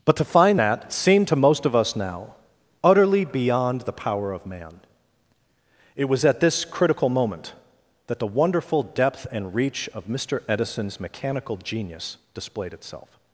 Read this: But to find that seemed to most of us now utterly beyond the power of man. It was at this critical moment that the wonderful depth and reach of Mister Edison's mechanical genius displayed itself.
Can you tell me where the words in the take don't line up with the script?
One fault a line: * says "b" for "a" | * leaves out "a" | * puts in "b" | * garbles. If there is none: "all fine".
all fine